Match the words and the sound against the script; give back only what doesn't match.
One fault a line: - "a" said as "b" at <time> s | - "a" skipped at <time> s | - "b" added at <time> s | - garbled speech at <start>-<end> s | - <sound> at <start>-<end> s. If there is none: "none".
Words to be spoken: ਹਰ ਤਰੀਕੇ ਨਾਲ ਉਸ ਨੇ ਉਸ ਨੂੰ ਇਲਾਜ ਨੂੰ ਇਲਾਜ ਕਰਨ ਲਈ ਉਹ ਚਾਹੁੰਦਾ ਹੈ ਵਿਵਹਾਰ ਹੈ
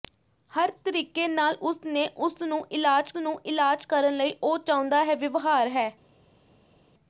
none